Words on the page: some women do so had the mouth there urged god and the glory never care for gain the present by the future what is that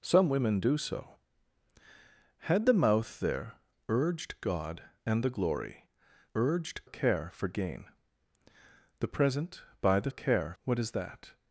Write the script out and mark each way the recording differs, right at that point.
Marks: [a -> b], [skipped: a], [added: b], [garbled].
some women do so had the mouth there urged god and the glory [never -> urged] care for gain the present by the [future -> care] what is that